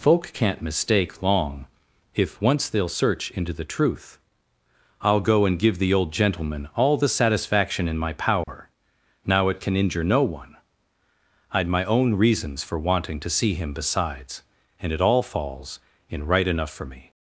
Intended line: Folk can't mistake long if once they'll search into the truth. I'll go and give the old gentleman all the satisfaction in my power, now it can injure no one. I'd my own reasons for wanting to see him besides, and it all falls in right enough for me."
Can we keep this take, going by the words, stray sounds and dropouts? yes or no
no